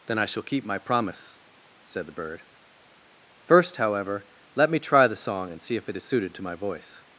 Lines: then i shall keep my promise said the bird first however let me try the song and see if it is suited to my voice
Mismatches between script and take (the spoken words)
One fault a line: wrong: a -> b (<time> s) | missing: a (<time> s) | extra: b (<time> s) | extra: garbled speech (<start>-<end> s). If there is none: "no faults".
no faults